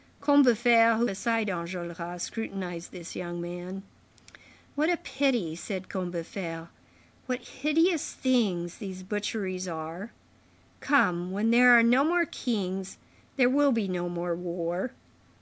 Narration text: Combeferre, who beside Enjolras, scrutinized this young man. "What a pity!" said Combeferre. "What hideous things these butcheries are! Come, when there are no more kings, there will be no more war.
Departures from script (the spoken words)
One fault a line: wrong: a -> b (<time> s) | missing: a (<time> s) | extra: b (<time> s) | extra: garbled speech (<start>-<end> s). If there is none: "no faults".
no faults